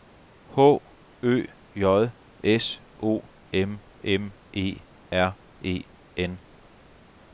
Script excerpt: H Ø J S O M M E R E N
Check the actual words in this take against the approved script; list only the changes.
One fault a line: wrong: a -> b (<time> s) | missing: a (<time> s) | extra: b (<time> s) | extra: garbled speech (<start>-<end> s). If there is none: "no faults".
no faults